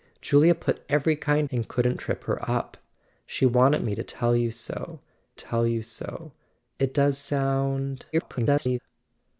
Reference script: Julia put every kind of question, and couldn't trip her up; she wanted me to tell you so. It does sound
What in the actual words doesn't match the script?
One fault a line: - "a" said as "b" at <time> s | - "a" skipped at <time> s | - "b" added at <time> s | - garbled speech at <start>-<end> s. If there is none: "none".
- "of question" skipped at 1.5 s
- "tell you so" added at 5.3 s
- garbled speech at 8.1-8.8 s